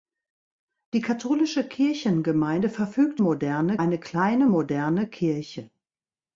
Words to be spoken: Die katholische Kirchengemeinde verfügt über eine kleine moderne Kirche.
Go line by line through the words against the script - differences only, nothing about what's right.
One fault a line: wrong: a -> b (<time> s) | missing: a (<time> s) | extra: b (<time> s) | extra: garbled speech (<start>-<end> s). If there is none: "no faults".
wrong: über -> moderne (3.2 s)